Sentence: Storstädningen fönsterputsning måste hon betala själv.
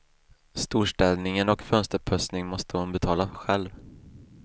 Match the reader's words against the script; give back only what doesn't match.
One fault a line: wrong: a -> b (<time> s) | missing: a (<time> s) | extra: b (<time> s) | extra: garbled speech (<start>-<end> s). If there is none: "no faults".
extra: och (1.5 s)